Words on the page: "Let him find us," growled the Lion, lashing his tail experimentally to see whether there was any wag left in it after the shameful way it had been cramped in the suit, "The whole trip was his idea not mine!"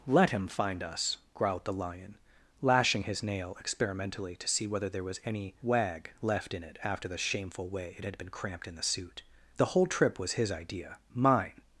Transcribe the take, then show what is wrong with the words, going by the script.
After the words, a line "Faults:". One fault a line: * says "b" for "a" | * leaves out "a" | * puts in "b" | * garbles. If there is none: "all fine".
"Let him find us," growled the Lion, lashing his nail experimentally to see whether there was any wag left in it after the shameful way it had been cramped in the suit, "The whole trip was his idea mine!"
Faults:
* says "nail" for "tail"
* leaves out "not"